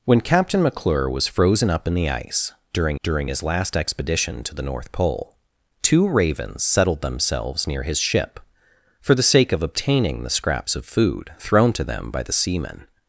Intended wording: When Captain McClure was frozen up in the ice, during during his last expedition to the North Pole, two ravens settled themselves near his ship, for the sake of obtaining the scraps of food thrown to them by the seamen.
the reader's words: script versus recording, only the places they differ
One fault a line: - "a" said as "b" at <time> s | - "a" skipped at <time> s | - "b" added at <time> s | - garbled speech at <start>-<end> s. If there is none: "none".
none